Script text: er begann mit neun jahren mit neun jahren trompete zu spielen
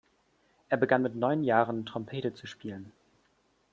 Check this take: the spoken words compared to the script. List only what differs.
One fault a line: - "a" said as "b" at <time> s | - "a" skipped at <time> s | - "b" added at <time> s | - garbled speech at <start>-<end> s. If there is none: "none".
- "mit neun jahren" skipped at 1.9 s